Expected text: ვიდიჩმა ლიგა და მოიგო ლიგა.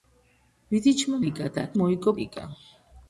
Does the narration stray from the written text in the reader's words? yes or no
no